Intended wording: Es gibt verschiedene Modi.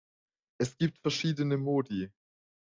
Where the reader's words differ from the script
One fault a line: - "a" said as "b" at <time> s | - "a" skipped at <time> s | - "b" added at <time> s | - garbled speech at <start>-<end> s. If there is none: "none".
none